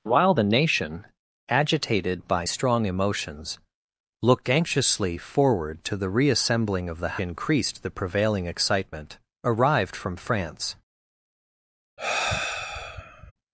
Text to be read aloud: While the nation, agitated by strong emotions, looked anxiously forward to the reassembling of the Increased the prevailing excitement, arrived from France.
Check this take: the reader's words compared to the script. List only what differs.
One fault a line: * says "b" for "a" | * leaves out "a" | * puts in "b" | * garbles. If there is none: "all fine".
all fine